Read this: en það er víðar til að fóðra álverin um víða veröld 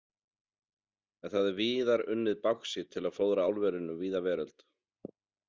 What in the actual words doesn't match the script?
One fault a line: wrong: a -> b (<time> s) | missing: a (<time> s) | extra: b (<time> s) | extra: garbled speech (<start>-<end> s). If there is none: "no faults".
extra: unnið báxít (2.1 s)